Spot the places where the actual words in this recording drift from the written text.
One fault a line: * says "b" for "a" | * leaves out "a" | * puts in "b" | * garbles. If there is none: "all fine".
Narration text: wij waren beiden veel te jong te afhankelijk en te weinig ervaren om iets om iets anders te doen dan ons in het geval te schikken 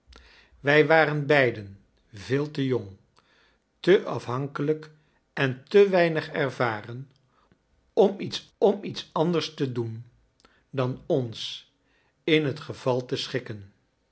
all fine